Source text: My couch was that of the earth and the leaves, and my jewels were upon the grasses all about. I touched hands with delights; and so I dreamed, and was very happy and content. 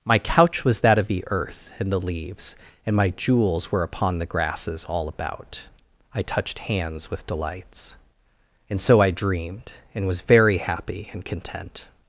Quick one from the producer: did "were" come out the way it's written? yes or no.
yes